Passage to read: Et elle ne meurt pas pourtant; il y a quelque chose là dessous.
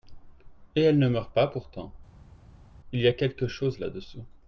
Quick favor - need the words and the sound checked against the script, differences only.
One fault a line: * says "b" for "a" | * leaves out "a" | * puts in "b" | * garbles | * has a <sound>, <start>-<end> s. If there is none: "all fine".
all fine